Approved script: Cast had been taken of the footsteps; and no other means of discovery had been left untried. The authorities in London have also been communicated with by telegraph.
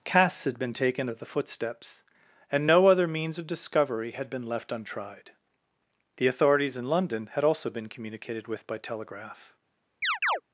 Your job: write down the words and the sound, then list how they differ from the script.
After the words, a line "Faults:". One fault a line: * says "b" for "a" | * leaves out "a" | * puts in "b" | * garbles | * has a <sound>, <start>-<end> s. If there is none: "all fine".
Casts had been taken of the footsteps; and no other means of discovery had been left untried. The authorities in London had also been communicated with by telegraph.
Faults:
* says "Casts" for "Cast"
* says "had" for "have"
* has a chirp, 10.0-10.4 s